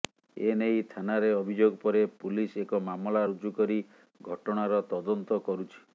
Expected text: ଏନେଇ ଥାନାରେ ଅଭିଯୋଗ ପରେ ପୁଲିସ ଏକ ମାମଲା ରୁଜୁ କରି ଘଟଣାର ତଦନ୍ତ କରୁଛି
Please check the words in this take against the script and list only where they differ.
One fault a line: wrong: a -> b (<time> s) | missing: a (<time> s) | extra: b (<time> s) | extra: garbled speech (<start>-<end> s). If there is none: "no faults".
no faults